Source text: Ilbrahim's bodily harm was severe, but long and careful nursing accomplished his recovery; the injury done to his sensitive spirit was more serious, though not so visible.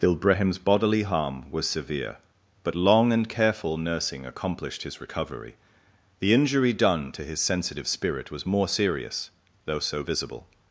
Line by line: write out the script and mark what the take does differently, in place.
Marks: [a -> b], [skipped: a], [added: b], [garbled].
Ilbrahim's bodily harm was severe, but long and careful nursing accomplished his recovery; the injury done to his sensitive spirit was more serious, though [skipped: not] so visible.